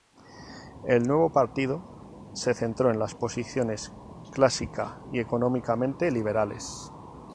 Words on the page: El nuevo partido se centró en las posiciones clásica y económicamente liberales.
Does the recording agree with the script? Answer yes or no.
yes